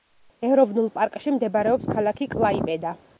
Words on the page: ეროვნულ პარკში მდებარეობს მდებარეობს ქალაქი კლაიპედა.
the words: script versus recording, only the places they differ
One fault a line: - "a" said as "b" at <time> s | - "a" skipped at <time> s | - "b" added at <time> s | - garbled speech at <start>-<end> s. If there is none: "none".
- "მდებარეობს" skipped at 1.9 s